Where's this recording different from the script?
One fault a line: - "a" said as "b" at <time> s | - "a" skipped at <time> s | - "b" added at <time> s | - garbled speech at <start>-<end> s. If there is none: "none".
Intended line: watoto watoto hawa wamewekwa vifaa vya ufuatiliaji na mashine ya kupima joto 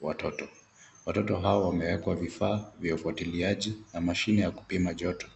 none